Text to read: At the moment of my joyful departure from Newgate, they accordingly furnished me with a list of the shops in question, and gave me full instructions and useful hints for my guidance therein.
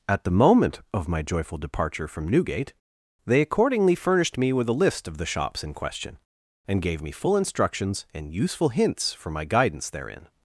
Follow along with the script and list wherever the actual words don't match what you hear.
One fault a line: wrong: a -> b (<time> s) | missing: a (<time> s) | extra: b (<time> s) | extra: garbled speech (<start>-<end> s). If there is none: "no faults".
no faults